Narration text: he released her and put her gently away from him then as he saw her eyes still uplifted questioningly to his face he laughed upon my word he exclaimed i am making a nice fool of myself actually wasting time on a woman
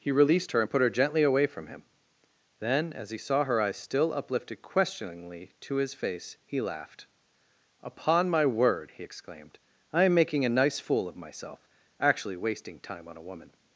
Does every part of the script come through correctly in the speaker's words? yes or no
yes